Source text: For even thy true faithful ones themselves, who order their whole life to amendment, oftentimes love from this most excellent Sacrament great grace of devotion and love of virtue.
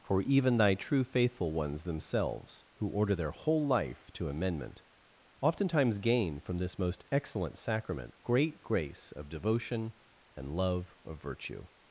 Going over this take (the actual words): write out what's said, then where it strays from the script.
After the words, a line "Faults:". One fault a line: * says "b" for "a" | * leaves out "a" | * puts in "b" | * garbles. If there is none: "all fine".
For even thy true faithful ones themselves, who order their whole life to amendment, oftentimes gain from this most excellent Sacrament great grace of devotion and love of virtue.
Faults:
* says "gain" for "love"